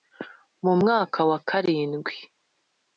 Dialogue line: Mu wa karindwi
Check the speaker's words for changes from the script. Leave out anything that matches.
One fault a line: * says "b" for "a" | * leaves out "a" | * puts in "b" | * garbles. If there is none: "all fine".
* puts in "mwaka"